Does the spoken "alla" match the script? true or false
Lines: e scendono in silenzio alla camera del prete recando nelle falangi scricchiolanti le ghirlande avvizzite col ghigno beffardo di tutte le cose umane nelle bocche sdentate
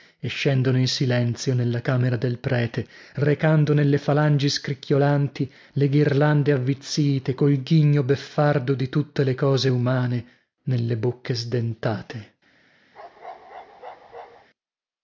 false